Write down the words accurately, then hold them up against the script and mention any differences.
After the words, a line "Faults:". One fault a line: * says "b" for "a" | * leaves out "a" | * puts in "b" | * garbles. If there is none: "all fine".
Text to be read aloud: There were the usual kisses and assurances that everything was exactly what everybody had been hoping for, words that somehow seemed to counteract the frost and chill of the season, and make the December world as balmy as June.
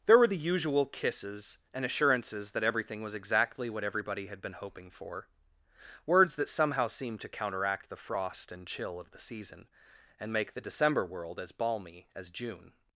There were the usual kisses and assurances that everything was exactly what everybody had been hoping for, words that somehow seemed to counteract the frost and chill of the season, and make the December world as balmy as June.
Faults:
all fine